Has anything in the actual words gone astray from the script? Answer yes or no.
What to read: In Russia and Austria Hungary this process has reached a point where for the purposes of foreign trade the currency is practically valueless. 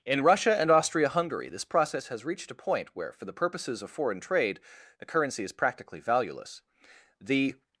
yes